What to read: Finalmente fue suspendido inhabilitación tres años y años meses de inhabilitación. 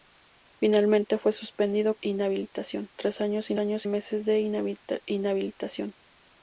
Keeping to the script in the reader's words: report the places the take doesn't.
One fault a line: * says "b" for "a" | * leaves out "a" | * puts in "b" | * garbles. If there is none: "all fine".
all fine